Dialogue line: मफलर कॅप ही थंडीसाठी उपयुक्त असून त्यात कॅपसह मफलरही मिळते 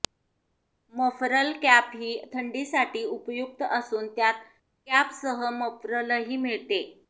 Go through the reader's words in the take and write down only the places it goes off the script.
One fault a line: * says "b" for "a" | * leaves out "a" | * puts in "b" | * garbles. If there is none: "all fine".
all fine